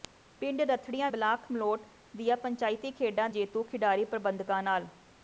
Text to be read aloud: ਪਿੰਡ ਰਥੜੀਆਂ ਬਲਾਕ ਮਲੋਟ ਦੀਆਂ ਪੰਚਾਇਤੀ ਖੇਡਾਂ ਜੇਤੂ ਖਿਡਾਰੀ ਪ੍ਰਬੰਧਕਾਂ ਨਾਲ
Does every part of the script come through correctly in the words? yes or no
yes